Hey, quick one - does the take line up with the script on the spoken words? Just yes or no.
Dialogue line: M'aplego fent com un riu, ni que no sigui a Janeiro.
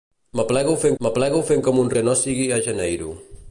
no